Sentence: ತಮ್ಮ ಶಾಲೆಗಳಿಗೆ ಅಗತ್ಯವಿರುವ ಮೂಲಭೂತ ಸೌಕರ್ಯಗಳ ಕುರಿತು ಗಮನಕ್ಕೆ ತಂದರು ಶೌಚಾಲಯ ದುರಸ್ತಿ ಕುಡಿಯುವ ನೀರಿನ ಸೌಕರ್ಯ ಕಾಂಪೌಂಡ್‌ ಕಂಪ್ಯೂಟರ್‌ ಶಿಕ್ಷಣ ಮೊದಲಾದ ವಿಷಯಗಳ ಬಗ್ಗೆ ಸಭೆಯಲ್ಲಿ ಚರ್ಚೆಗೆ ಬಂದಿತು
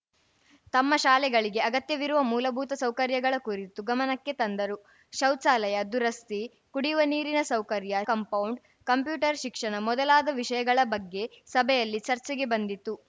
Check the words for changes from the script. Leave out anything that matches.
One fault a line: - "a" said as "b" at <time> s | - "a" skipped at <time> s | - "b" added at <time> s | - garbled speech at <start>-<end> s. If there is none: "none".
none